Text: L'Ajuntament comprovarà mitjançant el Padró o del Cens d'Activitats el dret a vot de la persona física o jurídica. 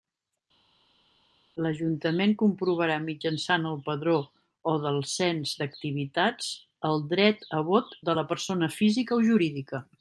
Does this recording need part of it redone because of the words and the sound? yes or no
no